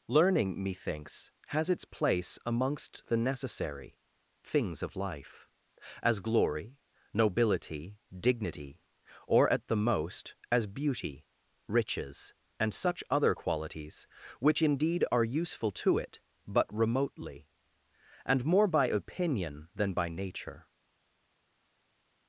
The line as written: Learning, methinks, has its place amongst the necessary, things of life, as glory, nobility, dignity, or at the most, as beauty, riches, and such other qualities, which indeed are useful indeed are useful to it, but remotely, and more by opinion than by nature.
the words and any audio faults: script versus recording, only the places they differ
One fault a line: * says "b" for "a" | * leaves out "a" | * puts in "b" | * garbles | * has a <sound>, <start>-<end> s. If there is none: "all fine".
* leaves out "indeed are useful"